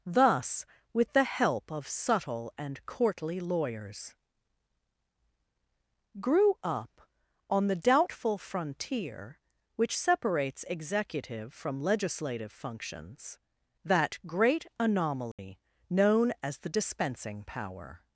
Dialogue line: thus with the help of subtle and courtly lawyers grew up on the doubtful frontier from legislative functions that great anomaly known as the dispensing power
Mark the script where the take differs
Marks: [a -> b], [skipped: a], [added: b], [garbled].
thus with the help of subtle and courtly lawyers grew up on the doubtful frontier [added: which separates executive] from legislative functions that great anomaly known as the dispensing power